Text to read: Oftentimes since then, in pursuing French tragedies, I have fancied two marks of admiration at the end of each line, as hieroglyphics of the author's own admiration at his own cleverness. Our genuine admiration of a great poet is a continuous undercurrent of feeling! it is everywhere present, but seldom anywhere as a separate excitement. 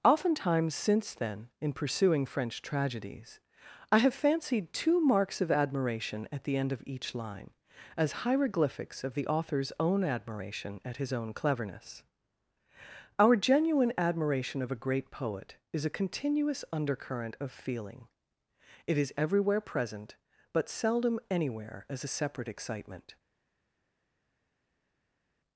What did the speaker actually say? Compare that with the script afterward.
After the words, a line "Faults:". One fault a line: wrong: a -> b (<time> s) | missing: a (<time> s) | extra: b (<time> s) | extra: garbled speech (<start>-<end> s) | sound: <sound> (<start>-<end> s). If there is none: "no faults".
Oftentimes since then, in pursuing French tragedies, I have fancied two marks of admiration at the end of each line, as hieroglyphics of the author's own admiration at his own cleverness. Our genuine admiration of a great poet is a continuous undercurrent of feeling! it is everywhere present, but seldom anywhere as a separate excitement.
Faults:
no faults